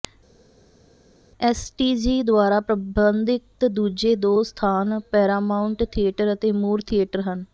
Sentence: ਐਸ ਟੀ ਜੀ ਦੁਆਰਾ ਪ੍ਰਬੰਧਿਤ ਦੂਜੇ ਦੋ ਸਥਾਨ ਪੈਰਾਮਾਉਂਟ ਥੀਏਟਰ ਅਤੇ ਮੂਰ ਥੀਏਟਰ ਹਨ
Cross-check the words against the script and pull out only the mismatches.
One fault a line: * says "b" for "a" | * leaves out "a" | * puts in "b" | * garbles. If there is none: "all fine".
all fine